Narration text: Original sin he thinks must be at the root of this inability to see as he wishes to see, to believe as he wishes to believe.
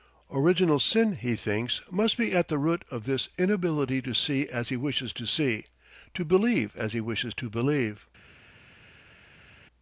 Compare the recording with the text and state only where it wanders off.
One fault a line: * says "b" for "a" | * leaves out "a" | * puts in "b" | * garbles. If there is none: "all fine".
all fine